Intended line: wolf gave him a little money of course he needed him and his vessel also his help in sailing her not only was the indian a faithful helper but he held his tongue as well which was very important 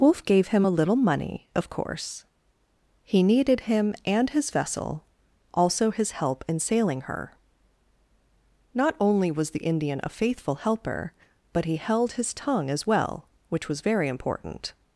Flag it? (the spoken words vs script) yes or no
no